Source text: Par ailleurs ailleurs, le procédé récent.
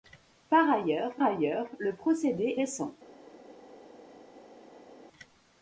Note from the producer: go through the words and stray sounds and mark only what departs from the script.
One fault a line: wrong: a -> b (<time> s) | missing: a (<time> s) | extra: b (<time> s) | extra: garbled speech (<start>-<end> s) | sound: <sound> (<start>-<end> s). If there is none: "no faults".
no faults